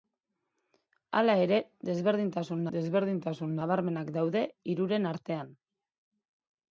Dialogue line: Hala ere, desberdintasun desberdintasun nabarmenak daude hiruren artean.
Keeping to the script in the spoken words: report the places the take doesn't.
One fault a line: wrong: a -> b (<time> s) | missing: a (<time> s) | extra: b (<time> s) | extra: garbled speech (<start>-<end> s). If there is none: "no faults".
no faults